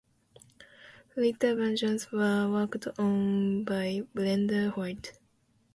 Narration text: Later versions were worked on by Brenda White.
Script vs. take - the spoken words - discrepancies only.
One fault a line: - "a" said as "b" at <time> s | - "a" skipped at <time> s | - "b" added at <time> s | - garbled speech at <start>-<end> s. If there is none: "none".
none